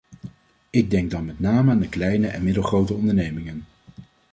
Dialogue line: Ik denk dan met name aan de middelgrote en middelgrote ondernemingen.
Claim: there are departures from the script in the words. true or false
true